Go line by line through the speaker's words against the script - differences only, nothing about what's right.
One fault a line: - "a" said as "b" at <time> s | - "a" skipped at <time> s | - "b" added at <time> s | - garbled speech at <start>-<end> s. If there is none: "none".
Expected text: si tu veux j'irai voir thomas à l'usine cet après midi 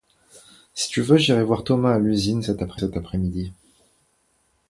- "cet après" added at 2.7 s